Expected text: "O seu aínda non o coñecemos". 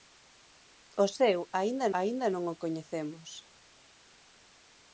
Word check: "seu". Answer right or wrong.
right